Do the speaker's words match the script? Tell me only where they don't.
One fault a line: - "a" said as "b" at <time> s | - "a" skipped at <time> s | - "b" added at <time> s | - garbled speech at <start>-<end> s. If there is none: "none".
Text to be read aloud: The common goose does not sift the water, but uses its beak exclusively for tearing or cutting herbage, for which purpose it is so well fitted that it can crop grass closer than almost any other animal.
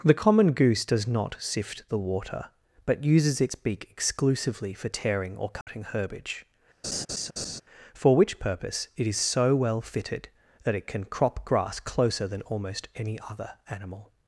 none